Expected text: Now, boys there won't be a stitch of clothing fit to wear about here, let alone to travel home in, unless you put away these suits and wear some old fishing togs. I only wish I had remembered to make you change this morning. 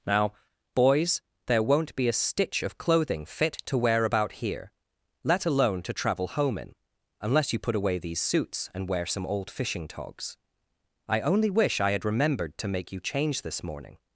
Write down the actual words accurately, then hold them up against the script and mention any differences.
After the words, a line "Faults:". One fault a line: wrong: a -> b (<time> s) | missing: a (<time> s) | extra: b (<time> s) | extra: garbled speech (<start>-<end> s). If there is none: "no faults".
Now, boys there won't be a stitch of clothing fit to wear about here, let alone to travel home in, unless you put away these suits and wear some old fishing togs. I only wish I had remembered to make you change this morning.
Faults:
no faults